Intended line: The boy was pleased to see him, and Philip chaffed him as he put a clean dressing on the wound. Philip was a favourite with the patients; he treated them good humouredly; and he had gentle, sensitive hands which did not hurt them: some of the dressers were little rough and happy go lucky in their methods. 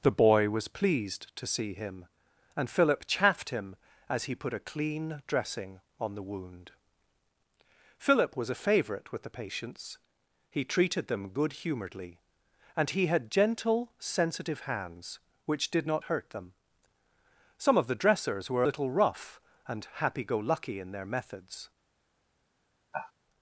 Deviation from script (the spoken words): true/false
false